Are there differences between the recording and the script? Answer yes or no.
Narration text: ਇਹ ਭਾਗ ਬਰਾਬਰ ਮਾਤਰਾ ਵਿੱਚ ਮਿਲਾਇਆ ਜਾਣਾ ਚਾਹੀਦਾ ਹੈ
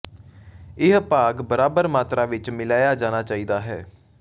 no